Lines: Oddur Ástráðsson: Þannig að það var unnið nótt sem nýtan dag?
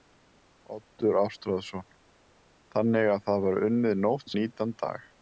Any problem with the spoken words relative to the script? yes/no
yes